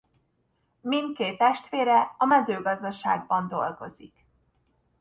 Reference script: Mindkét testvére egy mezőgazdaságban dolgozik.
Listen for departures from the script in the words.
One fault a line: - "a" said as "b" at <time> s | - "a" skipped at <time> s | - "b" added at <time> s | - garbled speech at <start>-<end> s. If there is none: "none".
- "egy" said as "a" at 2.2 s